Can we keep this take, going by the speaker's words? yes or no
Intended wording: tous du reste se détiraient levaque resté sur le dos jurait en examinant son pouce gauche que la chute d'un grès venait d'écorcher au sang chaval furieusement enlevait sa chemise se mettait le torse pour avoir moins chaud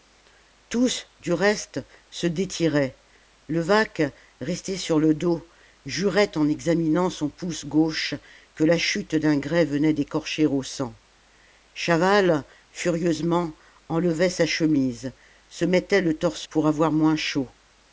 yes